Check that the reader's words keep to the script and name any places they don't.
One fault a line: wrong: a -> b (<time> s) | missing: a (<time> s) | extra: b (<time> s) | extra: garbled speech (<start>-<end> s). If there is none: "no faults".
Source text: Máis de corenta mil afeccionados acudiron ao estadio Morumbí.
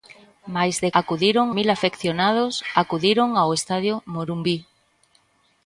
wrong: corenta -> acudiron (1.0 s)